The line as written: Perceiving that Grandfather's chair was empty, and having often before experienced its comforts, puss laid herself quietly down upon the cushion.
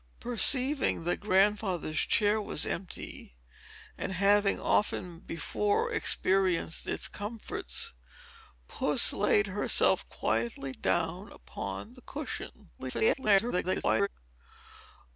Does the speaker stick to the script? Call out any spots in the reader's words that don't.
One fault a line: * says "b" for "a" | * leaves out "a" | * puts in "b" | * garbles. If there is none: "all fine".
* garbles